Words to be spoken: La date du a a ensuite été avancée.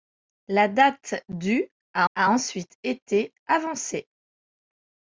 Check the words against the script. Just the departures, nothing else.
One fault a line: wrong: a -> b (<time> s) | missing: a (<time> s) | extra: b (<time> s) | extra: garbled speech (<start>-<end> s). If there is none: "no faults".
no faults